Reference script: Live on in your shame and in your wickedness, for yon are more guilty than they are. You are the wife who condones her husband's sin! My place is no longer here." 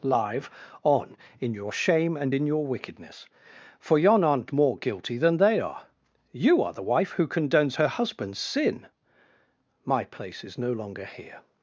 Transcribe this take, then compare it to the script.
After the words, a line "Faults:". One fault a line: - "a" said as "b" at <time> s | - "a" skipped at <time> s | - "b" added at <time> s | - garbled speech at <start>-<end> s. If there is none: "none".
Live on in your shame and in your wickedness, for yon aren't more guilty than they are. You are the wife who condones her husband's sin! My place is no longer here."
Faults:
- "are" said as "aren't" at 4.2 s